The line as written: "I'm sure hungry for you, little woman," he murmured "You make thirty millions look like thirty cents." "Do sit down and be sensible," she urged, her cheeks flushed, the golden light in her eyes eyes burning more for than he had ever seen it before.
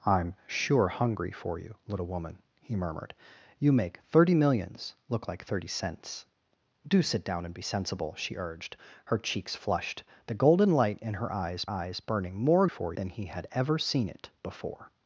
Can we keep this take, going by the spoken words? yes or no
yes